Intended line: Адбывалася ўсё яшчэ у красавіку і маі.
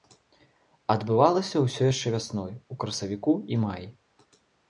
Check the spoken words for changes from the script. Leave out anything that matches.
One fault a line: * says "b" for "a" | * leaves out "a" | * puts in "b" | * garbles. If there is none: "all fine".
* puts in "вясной"